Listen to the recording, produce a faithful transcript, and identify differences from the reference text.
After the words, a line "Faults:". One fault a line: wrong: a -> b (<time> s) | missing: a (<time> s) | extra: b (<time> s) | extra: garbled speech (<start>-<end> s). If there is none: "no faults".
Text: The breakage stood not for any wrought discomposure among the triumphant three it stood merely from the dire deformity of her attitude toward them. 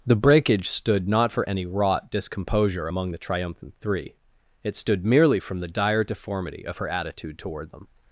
The breakage stood not for any wrought discomposure among the triumphant three it stood merely from the dire deformity of her attitude toward them.
Faults:
no faults